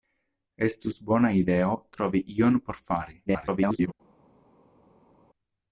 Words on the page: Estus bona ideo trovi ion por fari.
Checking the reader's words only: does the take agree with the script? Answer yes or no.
no